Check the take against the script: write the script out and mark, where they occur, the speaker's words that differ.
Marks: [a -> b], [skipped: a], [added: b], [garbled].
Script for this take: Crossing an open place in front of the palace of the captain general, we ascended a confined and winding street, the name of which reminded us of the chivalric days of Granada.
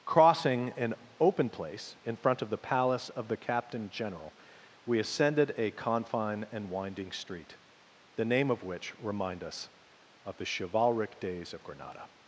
Crossing an open place in front of the palace of the captain general, we ascended a [confined -> confine] and winding street, the name of which [reminded -> remind] us of the chivalric days of Granada.